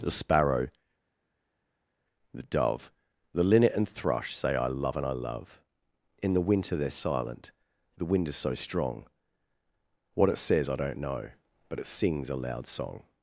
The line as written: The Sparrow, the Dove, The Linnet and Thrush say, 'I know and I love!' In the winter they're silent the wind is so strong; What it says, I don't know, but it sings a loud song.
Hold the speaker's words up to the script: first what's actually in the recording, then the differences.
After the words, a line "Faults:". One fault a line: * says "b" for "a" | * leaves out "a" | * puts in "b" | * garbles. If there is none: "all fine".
The Sparrow, the Dove, The Linnet and Thrush say, 'I love and I love!' In the winter they're silent the wind is so strong; What it says, I don't know, but it sings a loud song.
Faults:
* says "love" for "know"